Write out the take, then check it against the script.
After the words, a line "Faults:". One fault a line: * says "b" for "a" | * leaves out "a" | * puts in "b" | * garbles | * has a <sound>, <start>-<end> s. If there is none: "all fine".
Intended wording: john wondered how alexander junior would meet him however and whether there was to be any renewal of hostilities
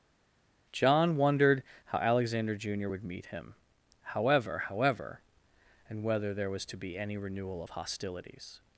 john wondered how alexander junior would meet him however however and whether there was to be any renewal of hostilities
Faults:
* puts in "however"